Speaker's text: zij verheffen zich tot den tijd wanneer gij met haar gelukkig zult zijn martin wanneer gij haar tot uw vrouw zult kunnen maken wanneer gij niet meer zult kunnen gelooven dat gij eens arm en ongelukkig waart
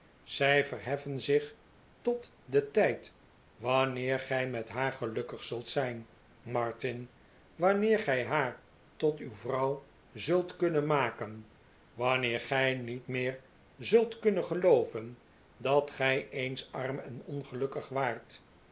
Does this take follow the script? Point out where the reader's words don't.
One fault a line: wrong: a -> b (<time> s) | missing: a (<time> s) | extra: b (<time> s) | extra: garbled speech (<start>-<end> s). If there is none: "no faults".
no faults